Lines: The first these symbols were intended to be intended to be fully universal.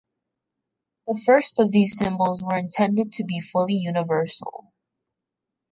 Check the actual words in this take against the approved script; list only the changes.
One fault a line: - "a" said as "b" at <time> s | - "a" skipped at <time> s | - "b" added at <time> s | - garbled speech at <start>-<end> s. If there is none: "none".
- "of" added at 1.6 s
- "intended to be" skipped at 3.4 s